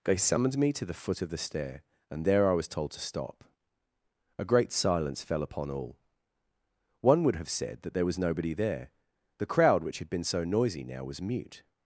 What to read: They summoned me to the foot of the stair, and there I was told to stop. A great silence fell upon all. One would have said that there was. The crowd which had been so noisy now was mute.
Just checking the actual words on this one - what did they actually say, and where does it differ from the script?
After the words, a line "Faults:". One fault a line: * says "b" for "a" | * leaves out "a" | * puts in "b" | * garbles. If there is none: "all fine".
They summoned me to the foot of the stair, and there I was told to stop. A great silence fell upon all. One would have said that there was nobody there. The crowd which had been so noisy now was mute.
Faults:
* puts in "nobody there"